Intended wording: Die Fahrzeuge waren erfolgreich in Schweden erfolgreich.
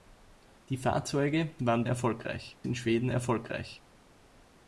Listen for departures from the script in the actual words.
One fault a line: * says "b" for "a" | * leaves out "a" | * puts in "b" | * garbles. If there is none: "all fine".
all fine